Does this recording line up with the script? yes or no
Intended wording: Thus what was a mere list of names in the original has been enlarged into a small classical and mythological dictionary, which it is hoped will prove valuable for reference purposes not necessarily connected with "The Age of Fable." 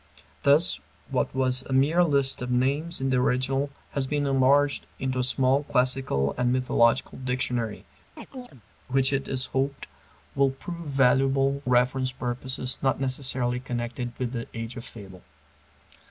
no